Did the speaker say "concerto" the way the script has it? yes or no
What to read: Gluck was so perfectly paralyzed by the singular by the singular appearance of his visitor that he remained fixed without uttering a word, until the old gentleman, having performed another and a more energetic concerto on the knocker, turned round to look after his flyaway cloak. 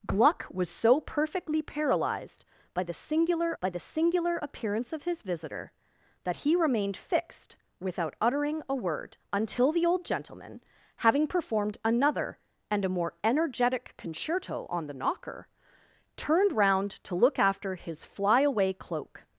yes